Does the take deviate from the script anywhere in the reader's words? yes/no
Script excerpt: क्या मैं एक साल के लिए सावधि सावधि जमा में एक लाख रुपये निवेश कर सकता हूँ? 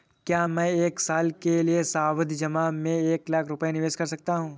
yes